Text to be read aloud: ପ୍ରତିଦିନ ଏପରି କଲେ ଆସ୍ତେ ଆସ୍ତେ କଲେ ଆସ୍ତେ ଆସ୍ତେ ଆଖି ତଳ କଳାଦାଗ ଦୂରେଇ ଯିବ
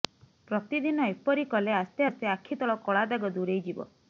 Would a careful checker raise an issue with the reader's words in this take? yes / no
yes